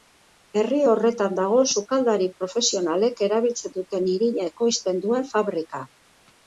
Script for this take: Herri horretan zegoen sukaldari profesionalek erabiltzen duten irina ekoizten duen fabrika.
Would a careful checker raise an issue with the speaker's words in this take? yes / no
yes